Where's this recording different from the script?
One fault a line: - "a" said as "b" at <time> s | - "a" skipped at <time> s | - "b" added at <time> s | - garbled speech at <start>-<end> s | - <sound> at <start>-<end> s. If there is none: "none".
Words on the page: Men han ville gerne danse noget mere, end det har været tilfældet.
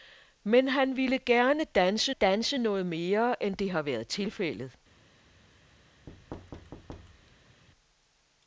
- "danse" added at 2.1 s
- thud at 6.1-7.6 s